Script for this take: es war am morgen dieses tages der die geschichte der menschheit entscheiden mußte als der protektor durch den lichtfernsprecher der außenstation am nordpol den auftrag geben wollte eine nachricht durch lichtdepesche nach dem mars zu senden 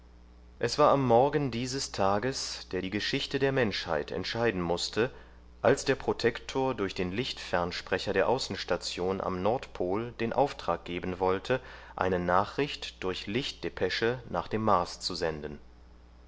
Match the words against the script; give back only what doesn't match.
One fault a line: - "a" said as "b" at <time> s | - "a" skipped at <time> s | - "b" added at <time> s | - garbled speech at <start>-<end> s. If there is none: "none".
none